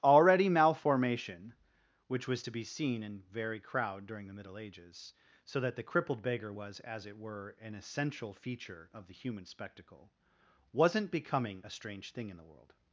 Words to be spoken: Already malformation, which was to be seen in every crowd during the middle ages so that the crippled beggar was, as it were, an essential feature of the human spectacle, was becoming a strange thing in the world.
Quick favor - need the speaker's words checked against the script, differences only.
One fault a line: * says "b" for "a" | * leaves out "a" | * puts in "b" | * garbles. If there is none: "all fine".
* says "very" for "every"
* says "wasn't" for "was"